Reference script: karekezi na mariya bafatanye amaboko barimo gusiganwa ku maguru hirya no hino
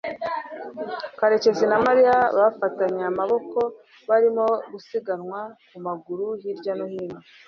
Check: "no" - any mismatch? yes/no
no